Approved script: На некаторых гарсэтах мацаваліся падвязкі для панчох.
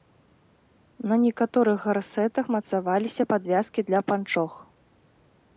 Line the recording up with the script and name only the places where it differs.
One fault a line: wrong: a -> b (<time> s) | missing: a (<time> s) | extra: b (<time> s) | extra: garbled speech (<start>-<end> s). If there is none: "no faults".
no faults